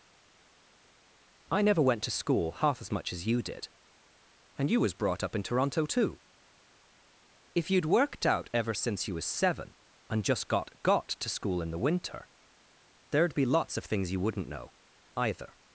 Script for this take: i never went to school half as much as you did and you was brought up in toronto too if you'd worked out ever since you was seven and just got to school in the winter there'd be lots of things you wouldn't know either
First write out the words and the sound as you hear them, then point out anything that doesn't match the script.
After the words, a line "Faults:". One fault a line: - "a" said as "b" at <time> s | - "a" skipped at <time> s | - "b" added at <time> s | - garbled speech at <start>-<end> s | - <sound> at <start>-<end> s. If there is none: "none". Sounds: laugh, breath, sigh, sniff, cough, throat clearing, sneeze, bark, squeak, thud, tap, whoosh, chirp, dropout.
i never went to school half as much as you did and you was brought up in toronto too if you'd worked out ever since you was seven and just got got to school in the winter there'd be lots of things you wouldn't know either
Faults:
- "got" added at 10.8 s